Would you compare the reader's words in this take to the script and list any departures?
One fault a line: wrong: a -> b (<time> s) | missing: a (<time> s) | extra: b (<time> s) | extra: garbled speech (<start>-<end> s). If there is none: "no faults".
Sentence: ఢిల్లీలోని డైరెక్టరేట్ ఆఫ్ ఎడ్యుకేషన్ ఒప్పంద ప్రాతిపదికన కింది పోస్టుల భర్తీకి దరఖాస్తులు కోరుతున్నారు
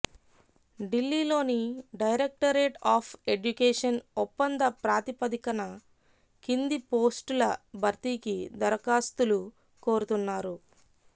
no faults